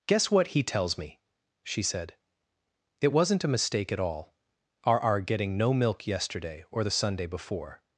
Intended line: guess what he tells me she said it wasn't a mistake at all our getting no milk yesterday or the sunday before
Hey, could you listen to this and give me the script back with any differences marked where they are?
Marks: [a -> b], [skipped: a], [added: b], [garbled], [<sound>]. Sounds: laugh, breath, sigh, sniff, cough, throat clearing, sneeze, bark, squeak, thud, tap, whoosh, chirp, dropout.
guess what he tells me she said it wasn't a mistake at all our [added: our] getting no milk yesterday or the sunday before